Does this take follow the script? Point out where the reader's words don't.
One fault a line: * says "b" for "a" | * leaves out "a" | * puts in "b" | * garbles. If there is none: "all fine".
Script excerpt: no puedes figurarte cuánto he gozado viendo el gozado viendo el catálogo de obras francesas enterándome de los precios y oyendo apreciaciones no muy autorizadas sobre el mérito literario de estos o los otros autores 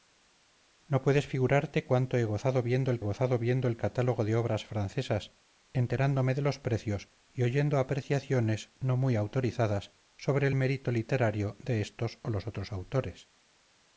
all fine